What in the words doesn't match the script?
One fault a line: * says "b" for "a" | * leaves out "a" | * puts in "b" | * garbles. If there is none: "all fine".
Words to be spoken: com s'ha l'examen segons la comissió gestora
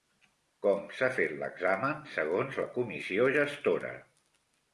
* puts in "fet"